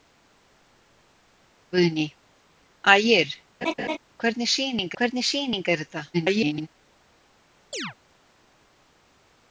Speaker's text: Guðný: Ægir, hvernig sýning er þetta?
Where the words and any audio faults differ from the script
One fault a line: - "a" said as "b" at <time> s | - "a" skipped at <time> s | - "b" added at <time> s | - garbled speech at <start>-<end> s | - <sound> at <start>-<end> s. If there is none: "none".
- laugh at 3.6-4.0 s
- "hvernig sýning" added at 5.0 s
- garbled speech at 6.1-6.7 s
- chirp at 7.7-7.9 s